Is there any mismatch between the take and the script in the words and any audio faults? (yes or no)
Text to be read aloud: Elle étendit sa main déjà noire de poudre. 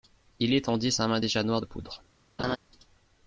yes